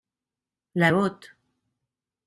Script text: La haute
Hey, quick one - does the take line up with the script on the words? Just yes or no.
yes